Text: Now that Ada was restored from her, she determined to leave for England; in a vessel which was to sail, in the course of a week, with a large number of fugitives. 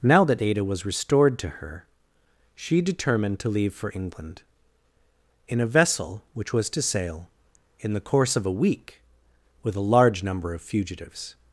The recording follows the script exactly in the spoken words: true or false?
false